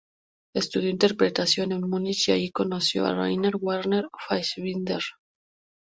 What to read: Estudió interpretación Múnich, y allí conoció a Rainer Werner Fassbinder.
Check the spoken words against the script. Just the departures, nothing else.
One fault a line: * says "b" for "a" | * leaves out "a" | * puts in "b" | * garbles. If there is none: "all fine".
* puts in "en"